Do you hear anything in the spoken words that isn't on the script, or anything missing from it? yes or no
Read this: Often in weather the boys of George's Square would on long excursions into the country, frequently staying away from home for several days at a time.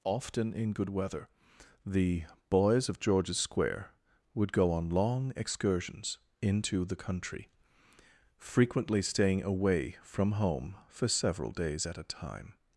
yes